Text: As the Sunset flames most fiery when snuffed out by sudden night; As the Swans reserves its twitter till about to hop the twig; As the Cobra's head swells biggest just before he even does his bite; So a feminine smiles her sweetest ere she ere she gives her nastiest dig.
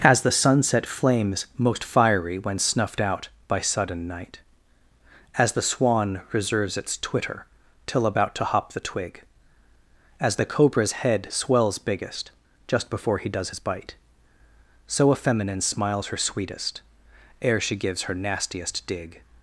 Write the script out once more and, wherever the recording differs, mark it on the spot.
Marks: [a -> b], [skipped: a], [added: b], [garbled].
As the Sunset flames most fiery when snuffed out by sudden night; As the [Swans -> Swan] reserves its twitter till about to hop the twig; As the Cobra's head swells biggest just before he [skipped: even] does his bite; So a feminine smiles her sweetest ere she [skipped: ere she] gives her nastiest dig.